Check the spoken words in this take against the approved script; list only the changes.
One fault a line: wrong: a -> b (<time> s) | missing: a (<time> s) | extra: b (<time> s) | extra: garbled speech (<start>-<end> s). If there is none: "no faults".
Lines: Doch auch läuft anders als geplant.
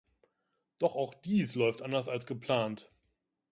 extra: dies (1.1 s)